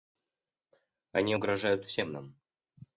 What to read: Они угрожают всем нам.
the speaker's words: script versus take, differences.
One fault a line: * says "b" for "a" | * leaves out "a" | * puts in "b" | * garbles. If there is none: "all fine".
all fine